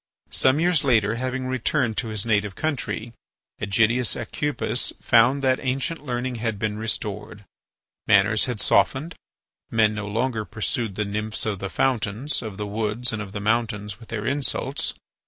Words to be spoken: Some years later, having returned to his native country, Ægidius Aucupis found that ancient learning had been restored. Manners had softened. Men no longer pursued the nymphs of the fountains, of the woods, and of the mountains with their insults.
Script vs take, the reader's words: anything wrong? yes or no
no